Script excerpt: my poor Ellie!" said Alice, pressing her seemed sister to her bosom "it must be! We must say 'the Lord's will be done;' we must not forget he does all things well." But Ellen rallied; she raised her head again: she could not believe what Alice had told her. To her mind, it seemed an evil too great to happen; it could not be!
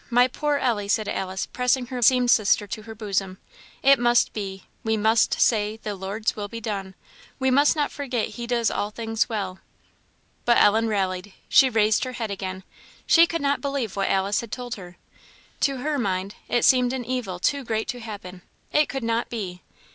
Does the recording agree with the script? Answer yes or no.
yes